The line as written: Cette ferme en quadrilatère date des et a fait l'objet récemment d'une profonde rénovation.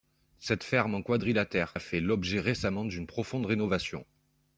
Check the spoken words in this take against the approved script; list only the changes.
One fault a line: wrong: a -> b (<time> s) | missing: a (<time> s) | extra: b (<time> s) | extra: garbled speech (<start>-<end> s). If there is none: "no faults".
missing: date des et (1.8 s)